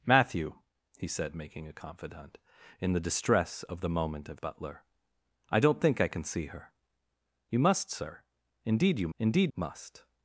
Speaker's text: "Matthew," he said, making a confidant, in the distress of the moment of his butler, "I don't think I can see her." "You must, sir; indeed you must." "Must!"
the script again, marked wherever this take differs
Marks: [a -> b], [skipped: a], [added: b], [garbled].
"Matthew," he said, making a confidant, in the distress of the moment of [skipped: his] butler, "I don't think I can see her." "You must, sir; indeed you [must." -> indeed] "Must!"